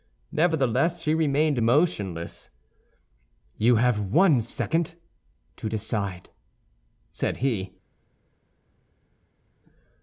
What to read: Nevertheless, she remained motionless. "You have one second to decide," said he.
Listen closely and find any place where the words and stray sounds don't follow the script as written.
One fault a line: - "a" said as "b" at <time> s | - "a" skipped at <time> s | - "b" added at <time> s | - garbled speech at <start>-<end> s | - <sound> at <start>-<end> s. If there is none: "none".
none